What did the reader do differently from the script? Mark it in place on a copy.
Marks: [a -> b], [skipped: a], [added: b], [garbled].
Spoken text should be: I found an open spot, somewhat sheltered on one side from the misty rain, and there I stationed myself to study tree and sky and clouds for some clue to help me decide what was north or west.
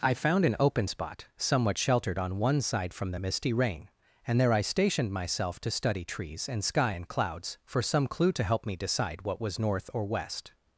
I found an open spot, somewhat sheltered on one side from the misty rain, and there I stationed myself to study [tree -> trees] and sky and clouds for some clue to help me decide what was north or west.